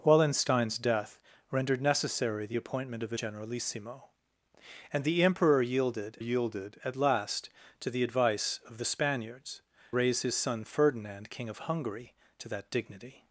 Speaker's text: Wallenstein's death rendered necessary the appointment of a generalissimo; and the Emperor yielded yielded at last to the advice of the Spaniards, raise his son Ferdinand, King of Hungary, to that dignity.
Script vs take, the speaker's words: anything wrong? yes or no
no